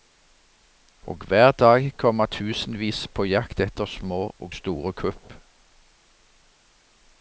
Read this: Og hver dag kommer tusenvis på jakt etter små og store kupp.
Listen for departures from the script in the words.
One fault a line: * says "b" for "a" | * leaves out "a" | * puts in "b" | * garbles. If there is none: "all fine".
all fine